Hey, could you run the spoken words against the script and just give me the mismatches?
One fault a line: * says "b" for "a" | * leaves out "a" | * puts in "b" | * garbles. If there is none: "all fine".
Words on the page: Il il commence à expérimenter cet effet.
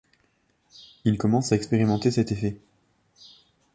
* leaves out "il"